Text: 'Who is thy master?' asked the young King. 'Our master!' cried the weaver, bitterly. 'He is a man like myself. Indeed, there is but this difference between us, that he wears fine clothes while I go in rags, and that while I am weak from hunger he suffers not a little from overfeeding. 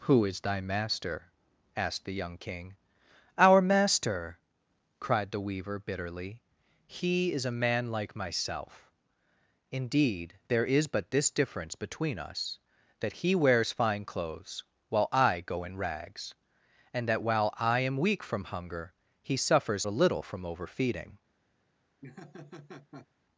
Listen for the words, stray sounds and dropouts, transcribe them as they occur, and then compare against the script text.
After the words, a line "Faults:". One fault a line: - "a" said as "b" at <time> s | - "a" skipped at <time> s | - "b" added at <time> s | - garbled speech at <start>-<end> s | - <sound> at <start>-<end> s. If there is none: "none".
'Who is thy master?' asked the young King. 'Our master!' cried the weaver, bitterly. 'He is a man like myself. Indeed, there is but this difference between us, that he wears fine clothes while I go in rags, and that while I am weak from hunger he suffers a little from overfeeding.
Faults:
- "not" skipped at 19.9 s
- laugh at 22.0-23.1 s